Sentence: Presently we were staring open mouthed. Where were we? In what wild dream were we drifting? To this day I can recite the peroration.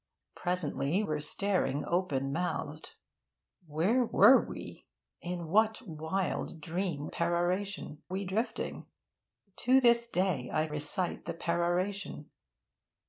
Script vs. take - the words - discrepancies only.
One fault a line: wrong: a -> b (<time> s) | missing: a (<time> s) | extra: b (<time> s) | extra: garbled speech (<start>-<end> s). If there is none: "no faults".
missing: we (1.0 s)
wrong: were -> peroration (7.1 s)
missing: can (10.7 s)